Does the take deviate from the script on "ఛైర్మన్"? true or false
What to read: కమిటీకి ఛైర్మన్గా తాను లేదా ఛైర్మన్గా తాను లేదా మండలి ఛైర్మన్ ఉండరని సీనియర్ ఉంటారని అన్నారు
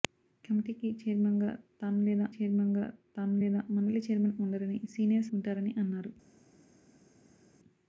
false